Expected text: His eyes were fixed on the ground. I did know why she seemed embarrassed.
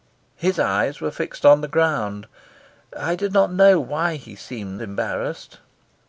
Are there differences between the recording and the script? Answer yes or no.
yes